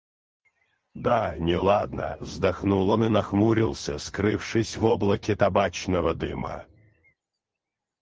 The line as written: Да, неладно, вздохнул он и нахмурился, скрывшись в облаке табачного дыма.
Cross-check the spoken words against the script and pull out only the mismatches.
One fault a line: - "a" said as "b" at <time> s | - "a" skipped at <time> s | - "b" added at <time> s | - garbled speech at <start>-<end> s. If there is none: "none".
none